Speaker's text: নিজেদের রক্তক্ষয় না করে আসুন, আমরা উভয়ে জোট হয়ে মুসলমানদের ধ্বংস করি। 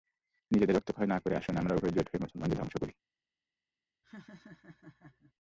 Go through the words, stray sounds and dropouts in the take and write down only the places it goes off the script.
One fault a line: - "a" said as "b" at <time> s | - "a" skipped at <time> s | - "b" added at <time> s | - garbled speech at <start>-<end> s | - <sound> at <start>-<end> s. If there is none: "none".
- laugh at 4.0-5.3 s